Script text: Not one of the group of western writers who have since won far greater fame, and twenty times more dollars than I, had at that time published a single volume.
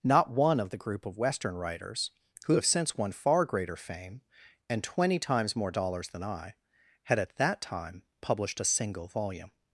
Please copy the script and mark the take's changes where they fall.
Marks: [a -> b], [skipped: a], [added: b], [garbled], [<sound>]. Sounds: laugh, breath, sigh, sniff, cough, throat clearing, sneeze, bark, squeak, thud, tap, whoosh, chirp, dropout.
Not one of the group of western writers who have since won far greater fame, and twenty times more dollars than I, had at that time published a single volume.